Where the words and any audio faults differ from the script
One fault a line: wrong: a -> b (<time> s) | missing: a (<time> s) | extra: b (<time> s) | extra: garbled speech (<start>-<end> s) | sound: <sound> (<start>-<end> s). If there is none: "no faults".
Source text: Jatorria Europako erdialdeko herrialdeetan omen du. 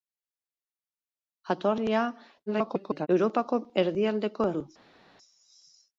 extra: garbled speech (2.5-3.1 s)
missing: herrialdeetan omen (4.5 s)